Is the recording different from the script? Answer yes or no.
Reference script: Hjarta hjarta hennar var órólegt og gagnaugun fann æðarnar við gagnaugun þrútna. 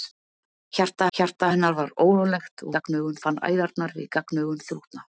no